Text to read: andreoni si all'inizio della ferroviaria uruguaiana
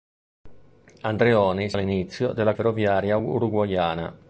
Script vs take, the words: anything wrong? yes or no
no